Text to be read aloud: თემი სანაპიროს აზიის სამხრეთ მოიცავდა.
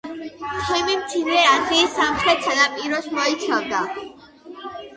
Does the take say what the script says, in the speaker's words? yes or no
no